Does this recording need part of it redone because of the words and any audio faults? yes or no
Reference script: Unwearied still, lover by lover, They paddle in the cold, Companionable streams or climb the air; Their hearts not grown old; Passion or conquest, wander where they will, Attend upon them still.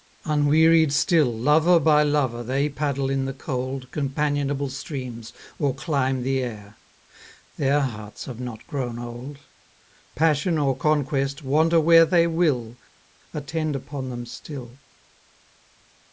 yes